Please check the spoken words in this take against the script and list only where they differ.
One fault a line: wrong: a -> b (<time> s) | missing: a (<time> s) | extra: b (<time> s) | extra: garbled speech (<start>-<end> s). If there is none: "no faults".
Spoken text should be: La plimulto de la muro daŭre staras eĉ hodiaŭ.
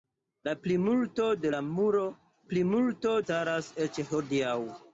wrong: daŭre -> plimulto (2.5 s)